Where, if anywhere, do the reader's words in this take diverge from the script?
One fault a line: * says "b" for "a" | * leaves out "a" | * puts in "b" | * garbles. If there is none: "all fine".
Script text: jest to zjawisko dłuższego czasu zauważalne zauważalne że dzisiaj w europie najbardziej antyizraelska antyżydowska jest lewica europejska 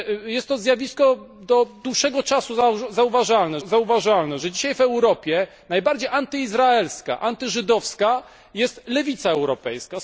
all fine